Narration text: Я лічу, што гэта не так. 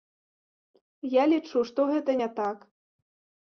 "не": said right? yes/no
yes